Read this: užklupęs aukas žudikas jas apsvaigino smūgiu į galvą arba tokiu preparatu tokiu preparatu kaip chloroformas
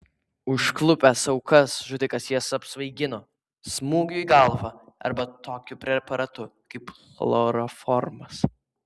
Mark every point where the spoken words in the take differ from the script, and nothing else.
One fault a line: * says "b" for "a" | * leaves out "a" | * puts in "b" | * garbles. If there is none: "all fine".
* leaves out "tokiu preparatu"